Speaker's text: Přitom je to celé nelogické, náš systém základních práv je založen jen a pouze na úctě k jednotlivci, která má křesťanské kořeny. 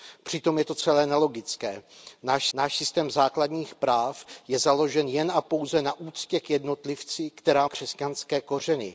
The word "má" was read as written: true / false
false